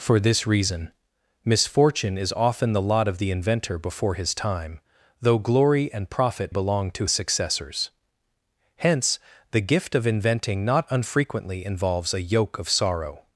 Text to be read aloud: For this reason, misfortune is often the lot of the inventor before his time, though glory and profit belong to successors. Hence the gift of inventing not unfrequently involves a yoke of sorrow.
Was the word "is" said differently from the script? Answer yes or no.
no